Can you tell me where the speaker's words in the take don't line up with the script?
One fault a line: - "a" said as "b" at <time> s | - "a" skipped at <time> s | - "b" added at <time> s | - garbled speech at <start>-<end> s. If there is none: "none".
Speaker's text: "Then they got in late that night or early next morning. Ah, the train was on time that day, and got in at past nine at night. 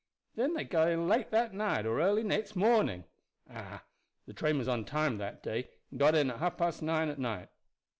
- "half" added at 6.4 s